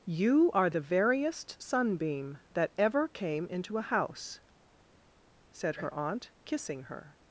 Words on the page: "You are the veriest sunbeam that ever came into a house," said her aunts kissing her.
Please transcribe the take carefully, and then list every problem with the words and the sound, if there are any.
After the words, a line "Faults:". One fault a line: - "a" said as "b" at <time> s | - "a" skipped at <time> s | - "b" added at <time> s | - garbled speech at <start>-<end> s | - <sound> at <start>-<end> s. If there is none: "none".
"You are the veriest sunbeam that ever came into a house," said her aunt kissing her.
Faults:
- "aunts" said as "aunt" at 5.9 s